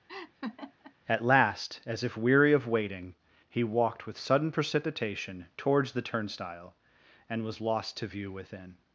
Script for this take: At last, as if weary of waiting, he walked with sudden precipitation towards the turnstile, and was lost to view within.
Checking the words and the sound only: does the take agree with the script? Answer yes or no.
no